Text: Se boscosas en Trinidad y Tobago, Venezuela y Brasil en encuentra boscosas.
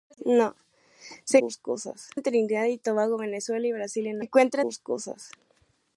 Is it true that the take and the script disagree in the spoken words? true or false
false